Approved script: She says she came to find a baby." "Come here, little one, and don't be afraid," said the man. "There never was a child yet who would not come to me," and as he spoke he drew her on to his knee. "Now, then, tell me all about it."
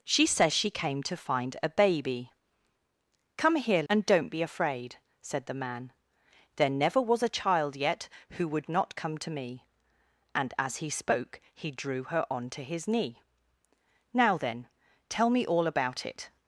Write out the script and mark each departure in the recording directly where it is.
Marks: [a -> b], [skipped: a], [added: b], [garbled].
She says she came to find a baby." "Come here, [skipped: little one,] and don't be afraid," said the man. "There never was a child yet who would not come to me," and as he spoke he drew her on to his knee. "Now, then, tell me all about it."